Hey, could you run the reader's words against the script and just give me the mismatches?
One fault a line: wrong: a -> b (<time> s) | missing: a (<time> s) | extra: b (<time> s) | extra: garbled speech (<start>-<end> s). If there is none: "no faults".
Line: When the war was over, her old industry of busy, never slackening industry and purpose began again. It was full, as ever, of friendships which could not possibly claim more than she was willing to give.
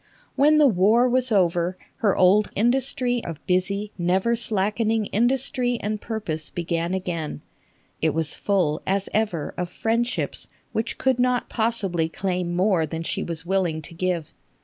no faults